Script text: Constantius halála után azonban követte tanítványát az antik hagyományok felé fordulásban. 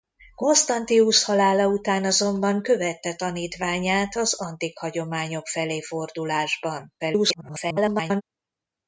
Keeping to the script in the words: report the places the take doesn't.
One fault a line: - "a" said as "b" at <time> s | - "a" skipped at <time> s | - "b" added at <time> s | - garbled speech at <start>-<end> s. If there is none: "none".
- garbled speech at 7.0-8.2 s